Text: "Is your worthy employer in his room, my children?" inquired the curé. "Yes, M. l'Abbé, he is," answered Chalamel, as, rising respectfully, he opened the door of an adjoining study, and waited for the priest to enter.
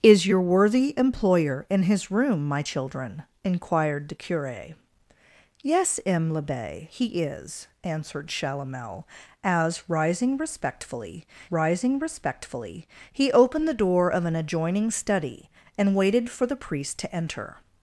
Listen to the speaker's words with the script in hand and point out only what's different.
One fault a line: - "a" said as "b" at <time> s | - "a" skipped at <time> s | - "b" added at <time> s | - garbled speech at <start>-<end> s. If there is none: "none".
- "rising respectfully" added at 11.5 s